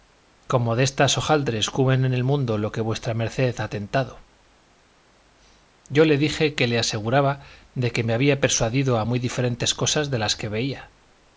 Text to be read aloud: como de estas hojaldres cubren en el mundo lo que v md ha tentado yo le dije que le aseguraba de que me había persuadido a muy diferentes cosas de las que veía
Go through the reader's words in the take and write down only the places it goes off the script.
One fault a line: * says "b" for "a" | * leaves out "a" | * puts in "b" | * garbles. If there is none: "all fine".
all fine